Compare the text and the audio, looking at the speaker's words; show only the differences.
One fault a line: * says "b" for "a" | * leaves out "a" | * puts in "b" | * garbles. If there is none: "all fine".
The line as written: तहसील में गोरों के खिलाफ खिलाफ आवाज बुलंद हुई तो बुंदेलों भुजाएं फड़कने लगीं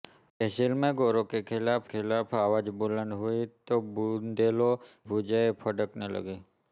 all fine